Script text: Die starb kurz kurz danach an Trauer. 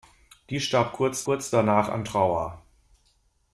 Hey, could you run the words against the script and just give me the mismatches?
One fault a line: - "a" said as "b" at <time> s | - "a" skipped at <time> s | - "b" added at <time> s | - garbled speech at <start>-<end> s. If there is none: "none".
none